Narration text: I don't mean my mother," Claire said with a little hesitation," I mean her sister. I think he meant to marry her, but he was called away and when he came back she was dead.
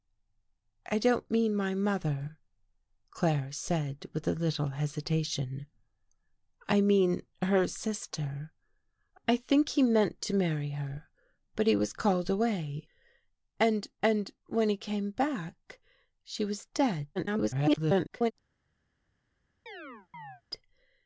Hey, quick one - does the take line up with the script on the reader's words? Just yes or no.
no